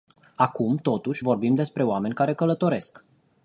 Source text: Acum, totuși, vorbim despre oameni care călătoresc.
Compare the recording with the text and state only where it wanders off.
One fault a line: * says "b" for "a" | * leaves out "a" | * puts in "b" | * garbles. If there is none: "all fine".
all fine